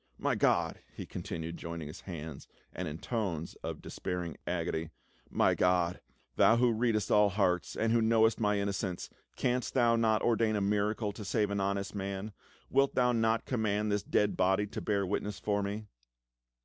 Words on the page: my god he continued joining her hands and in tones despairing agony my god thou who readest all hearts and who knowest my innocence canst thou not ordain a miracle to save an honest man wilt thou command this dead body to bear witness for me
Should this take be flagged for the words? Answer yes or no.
yes